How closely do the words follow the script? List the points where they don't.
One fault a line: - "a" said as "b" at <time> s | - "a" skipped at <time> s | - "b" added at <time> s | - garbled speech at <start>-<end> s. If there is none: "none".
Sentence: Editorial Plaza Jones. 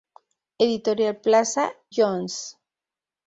none